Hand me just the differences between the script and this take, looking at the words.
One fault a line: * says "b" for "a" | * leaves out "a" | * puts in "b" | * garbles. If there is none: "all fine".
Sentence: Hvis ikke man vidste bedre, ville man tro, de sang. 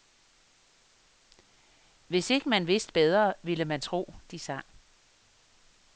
all fine